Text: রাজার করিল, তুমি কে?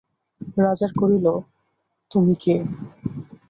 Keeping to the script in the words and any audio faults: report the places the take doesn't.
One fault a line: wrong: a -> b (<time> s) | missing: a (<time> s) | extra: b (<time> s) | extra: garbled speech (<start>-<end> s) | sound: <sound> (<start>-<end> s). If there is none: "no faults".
no faults